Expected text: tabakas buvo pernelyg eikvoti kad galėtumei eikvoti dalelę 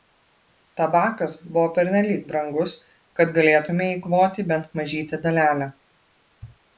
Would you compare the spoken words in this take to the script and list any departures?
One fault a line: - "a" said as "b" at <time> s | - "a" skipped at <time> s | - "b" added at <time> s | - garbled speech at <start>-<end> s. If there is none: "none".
- "eikvoti" said as "brangus" at 2.3 s
- "bent mažytę" added at 4.5 s